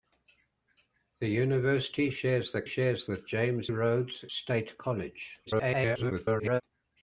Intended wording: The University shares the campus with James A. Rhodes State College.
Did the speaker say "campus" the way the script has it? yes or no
no